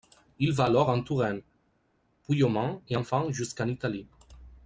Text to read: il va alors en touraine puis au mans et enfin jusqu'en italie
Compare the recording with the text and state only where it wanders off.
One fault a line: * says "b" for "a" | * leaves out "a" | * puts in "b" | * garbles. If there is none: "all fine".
all fine